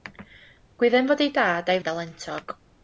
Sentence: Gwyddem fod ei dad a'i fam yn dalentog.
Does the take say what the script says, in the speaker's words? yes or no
no